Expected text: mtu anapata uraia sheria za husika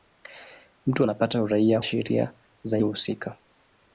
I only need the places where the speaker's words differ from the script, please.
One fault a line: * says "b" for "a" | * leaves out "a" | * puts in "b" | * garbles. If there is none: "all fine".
all fine